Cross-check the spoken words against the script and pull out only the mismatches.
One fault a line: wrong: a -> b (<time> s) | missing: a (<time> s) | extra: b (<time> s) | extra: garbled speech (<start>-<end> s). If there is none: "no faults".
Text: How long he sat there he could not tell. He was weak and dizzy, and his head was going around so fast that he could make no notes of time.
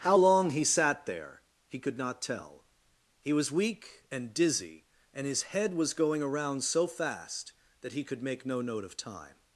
wrong: notes -> note (8.6 s)